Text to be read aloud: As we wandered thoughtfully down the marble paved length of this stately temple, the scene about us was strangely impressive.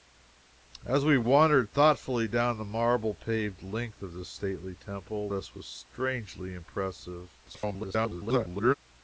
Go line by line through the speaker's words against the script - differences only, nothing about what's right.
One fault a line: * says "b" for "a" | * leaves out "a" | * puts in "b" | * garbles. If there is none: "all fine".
* leaves out "the scene about"
* garbles